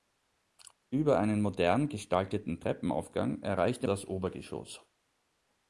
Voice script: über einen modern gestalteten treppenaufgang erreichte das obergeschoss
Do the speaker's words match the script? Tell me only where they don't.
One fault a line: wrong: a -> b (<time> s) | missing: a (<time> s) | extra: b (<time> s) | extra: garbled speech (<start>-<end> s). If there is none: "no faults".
no faults